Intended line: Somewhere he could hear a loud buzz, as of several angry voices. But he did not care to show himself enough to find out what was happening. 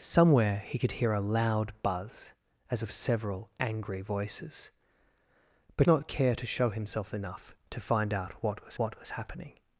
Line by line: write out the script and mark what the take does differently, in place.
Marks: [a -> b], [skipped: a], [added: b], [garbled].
Somewhere he could hear a loud buzz, as of several angry voices. But [skipped: he did] not care to show himself enough to find out what was [added: what was] happening.